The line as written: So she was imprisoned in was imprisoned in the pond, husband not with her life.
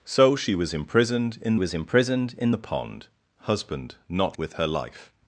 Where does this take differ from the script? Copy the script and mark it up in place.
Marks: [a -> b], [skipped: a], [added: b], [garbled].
So she was imprisoned in was imprisoned in the pond, husband not with her life.